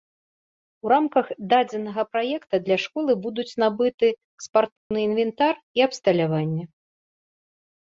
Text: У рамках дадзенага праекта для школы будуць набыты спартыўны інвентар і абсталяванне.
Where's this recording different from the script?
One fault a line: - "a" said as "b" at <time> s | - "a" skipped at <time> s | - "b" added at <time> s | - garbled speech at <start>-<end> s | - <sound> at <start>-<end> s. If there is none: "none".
- dropout at 4.8-4.9 s